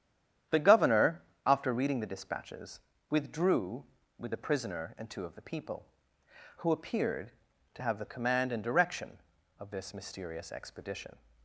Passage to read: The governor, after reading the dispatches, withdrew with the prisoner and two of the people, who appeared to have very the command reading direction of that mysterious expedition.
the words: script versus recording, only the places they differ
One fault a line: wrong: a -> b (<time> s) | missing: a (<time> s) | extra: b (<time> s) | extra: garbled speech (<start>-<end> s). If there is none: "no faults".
missing: very (8.0 s)
wrong: reading -> and (8.5 s)
wrong: that -> this (9.7 s)